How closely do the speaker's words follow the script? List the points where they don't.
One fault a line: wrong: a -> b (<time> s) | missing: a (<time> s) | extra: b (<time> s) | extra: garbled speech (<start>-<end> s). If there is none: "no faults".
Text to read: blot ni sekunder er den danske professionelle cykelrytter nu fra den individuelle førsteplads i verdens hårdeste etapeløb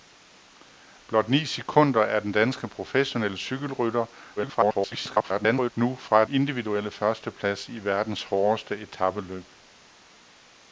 extra: garbled speech (4.4-5.7 s)
missing: den (6.2 s)